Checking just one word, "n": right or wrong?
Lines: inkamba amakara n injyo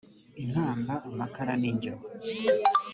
right